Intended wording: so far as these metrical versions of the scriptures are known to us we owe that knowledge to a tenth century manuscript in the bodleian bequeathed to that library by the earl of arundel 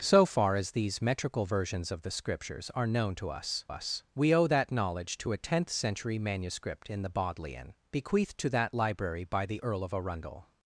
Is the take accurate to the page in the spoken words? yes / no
no